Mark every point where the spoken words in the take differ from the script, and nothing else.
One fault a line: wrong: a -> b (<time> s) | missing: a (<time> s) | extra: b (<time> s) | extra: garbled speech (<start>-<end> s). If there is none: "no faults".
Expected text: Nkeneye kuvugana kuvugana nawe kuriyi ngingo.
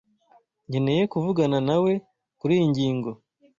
missing: kuvugana (1.6 s)